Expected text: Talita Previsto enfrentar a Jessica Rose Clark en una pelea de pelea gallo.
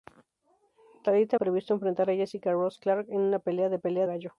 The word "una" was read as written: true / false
true